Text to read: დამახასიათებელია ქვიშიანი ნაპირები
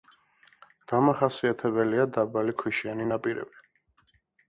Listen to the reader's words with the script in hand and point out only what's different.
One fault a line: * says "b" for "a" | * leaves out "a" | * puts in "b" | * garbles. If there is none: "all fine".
* puts in "დაბალი"